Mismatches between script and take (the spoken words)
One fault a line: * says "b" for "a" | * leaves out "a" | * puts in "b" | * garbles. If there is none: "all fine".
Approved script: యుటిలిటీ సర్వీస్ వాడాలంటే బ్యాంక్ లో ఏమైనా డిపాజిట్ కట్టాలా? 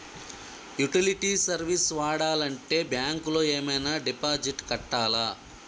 all fine